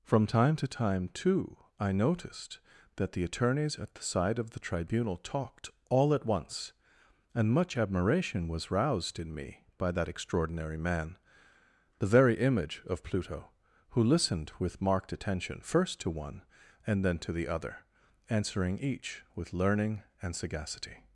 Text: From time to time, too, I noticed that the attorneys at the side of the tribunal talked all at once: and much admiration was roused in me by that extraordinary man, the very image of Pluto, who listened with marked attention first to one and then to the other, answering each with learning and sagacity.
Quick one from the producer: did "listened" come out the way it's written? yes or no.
yes